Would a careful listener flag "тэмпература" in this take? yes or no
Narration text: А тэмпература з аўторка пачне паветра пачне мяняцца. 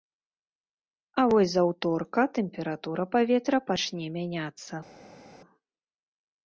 yes